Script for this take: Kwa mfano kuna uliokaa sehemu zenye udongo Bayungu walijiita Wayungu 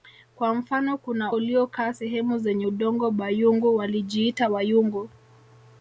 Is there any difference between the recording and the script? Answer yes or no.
no